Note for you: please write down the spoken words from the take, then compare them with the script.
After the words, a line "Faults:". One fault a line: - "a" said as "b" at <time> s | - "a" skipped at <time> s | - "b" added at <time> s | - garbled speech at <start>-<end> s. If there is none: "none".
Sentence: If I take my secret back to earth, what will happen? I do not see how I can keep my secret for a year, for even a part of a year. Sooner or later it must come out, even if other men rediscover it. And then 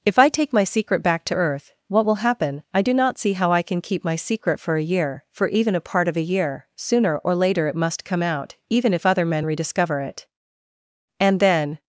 If I take my secret back to earth, what will happen? I do not see how I can keep my secret for a year, for even a part of a year. Sooner or later it must come out, even if other men rediscover it. And then
Faults:
none